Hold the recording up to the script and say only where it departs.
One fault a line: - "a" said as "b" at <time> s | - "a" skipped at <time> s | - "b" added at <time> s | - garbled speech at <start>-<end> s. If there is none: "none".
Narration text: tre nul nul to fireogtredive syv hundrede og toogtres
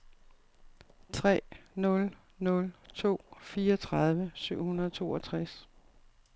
none